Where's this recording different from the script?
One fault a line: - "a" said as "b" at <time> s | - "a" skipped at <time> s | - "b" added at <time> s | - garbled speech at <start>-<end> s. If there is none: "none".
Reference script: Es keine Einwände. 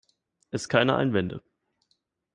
none